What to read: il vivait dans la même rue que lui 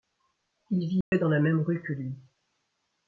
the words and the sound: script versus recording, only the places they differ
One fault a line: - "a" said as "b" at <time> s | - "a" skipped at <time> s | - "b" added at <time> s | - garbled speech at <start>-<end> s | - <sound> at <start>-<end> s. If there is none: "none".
- dropout at 1.0-1.1 s